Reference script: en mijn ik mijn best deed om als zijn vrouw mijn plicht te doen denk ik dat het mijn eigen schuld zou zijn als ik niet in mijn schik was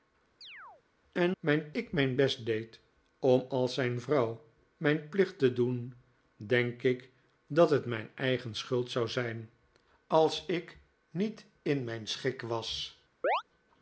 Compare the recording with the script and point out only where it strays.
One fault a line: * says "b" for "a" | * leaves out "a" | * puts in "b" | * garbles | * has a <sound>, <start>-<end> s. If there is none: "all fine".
* has a chirp, 0.4-0.8 s
* has a chirp, 13.2-13.4 s